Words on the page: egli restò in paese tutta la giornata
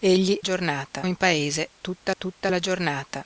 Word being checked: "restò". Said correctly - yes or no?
no